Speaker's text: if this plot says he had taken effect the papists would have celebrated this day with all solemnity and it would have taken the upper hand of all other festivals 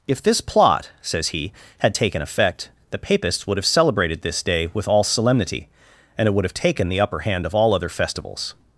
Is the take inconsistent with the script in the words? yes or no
no